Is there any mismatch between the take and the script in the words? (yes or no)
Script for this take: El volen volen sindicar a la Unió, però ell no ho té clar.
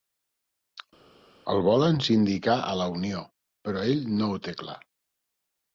yes